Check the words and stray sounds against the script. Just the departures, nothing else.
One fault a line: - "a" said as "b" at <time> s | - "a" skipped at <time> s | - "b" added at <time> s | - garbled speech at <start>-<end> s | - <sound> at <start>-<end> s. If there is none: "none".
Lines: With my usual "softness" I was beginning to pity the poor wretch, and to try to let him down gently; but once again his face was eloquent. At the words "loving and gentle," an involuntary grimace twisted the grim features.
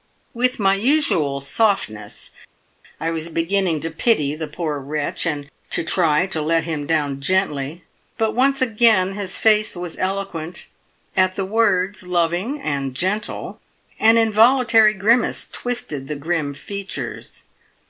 none